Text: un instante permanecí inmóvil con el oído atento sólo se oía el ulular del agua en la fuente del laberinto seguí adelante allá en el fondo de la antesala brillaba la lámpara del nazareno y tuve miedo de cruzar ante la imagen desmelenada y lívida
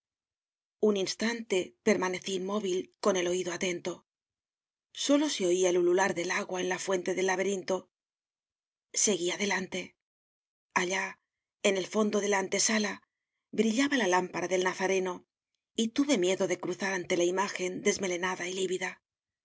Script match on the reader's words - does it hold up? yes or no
yes